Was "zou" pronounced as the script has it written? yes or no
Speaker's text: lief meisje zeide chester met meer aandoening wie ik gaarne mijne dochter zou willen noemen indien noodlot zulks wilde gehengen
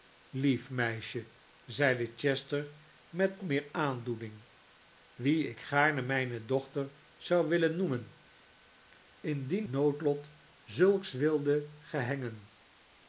yes